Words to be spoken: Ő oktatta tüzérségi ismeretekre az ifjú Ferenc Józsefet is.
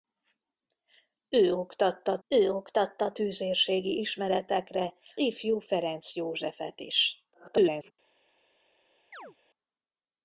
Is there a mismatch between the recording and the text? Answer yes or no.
yes